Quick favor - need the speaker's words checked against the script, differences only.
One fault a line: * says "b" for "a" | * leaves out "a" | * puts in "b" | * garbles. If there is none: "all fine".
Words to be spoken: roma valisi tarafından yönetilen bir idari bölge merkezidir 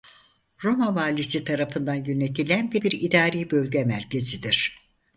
* puts in "bir"